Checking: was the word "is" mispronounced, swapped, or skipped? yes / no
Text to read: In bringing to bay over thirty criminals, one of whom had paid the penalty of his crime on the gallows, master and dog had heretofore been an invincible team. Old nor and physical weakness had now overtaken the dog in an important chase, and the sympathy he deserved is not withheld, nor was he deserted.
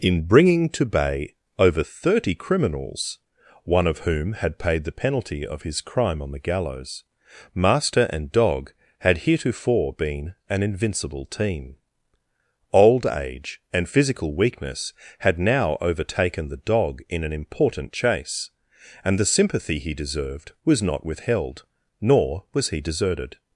yes